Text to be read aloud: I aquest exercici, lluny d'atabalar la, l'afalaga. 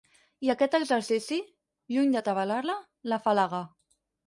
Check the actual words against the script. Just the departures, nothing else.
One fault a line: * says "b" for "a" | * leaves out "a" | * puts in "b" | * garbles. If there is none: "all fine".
all fine